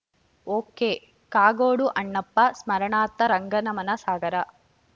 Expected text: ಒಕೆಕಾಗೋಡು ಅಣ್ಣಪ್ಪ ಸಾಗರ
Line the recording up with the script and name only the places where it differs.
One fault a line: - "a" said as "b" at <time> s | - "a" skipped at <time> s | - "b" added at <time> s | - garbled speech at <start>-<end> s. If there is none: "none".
- "ಸ್ಮರಣಾರ್ಥ ರಂಗನಮನ" added at 2.6 s